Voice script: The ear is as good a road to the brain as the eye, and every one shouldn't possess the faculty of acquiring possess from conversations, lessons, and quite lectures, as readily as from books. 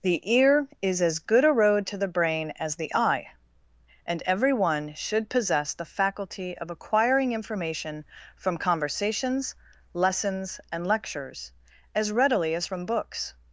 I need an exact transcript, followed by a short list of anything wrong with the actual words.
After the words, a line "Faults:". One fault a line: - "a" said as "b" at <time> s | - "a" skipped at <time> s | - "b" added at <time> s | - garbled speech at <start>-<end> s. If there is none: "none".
The ear is as good a road to the brain as the eye, and every one should possess the faculty of acquiring information from conversations, lessons, and lectures, as readily as from books.
Faults:
- "shouldn't" said as "should" at 5.0 s
- "possess" said as "information" at 7.3 s
- "quite" skipped at 10.9 s